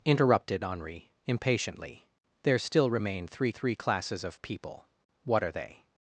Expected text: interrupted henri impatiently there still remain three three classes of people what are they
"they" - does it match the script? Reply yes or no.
yes